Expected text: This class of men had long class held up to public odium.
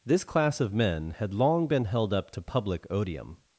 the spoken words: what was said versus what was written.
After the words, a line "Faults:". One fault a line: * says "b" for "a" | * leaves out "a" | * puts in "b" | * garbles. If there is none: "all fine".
This class of men had long been held up to public odium.
Faults:
* says "been" for "class"